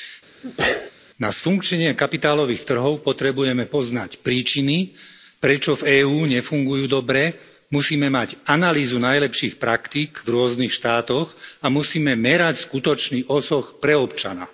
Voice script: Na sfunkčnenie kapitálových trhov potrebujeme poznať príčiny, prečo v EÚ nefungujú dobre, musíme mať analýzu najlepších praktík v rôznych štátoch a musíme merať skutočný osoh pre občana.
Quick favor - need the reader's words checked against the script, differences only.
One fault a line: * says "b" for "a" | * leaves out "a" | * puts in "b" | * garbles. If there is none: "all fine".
all fine